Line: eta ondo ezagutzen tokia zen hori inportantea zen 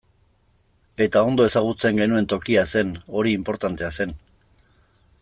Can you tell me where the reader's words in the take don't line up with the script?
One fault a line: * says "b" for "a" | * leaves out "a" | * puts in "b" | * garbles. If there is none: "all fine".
* puts in "genuen"